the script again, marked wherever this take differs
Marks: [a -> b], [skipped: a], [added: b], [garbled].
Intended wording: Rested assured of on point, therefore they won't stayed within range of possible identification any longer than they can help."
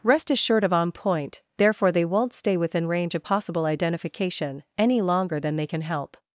[Rested -> Rest] assured of on point, therefore they won't [stayed -> stay] within range of possible identification any longer than they can help."